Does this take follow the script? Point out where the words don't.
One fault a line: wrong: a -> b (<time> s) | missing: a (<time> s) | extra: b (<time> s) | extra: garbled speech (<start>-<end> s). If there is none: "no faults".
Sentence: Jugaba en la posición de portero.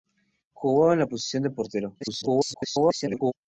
extra: garbled speech (2.0-3.3 s)